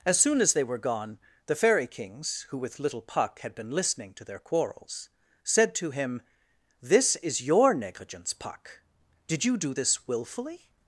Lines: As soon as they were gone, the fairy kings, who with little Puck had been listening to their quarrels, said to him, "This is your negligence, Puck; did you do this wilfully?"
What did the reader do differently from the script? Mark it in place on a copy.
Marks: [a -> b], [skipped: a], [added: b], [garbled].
As soon as they were gone, the fairy kings, who with little Puck had been listening to their quarrels, said to him, "This is your negligence, Puck; did you do this wilfully?"